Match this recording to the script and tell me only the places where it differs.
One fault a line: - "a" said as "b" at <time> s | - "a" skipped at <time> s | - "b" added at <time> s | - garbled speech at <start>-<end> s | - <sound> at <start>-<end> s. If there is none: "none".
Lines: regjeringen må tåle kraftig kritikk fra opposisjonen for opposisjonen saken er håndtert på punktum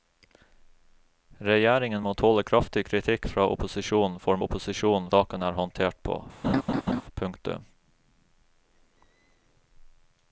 - laugh at 6.4-7.0 s